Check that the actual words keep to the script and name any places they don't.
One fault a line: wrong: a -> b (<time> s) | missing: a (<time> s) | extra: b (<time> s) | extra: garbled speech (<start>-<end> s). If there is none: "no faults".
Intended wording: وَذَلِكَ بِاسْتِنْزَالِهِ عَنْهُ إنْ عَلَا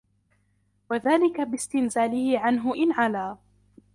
no faults